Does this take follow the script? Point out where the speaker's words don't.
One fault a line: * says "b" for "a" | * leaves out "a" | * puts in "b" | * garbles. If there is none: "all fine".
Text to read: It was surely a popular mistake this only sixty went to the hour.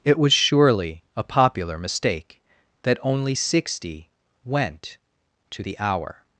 * says "that" for "this"